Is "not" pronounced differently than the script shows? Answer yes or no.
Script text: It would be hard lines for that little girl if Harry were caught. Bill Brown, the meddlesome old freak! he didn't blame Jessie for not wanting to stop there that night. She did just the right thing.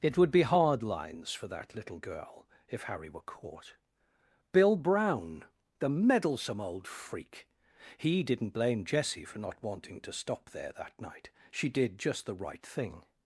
no